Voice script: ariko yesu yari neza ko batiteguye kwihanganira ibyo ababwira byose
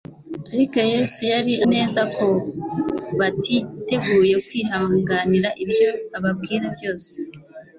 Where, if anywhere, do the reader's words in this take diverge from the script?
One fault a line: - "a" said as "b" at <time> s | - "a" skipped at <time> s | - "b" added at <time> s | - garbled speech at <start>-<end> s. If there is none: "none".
none